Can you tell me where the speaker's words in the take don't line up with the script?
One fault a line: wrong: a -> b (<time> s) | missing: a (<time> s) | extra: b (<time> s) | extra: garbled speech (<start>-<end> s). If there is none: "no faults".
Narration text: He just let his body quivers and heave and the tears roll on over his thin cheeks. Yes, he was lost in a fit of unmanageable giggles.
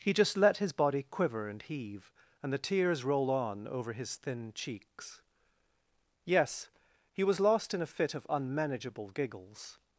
wrong: quivers -> quiver (1.1 s)